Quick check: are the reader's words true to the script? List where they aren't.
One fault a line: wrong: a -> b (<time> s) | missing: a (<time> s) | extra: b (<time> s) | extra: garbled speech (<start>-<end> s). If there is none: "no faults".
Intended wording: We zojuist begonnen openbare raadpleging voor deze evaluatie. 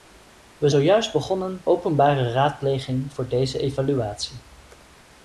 no faults